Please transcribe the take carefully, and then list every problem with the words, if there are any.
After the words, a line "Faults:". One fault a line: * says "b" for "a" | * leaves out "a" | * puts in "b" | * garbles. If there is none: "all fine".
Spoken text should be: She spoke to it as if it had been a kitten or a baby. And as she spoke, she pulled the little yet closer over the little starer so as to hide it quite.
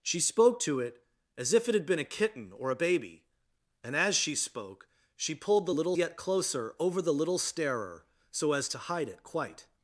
She spoke to it as if it had been a kitten or a baby. And as she spoke, she pulled the little yet closer over the little starer so as to hide it quite.
Faults:
all fine